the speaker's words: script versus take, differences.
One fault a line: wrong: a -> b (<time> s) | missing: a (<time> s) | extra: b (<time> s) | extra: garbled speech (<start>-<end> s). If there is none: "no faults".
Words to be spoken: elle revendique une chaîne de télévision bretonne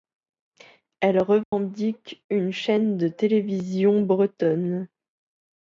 no faults